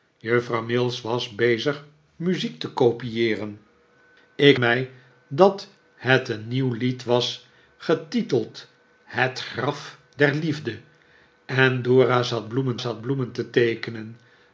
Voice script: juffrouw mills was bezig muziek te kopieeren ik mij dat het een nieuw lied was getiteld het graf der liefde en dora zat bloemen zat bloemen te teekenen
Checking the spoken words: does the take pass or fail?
pass